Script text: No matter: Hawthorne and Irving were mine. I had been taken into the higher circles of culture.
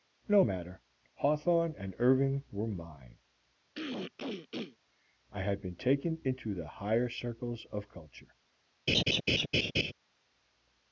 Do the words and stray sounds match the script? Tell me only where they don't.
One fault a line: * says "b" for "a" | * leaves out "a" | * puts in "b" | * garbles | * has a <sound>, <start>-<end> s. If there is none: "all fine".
* has a throat clearing, 3.7-4.8 s
* has a laugh, 8.9-9.9 s